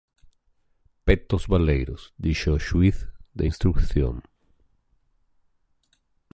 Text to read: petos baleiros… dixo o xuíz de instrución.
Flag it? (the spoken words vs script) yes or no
no